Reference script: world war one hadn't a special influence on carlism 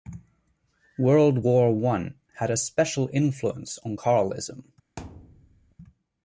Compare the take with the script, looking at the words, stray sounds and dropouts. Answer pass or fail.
fail